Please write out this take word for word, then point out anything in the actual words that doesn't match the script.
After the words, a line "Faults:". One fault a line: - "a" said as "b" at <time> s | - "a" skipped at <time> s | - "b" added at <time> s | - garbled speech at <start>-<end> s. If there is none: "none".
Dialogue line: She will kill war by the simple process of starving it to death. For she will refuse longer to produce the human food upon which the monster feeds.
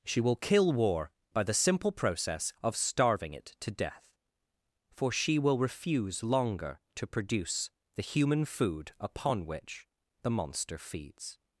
She will kill war by the simple process of starving it to death. For she will refuse longer to produce the human food upon which the monster feeds.
Faults:
none